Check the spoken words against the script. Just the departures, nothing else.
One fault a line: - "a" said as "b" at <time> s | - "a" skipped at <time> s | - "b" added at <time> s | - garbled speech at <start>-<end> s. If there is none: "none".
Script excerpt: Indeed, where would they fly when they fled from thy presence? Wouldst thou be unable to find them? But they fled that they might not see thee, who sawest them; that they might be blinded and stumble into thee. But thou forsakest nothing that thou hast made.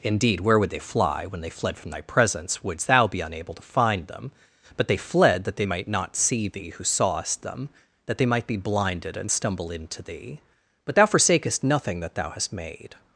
none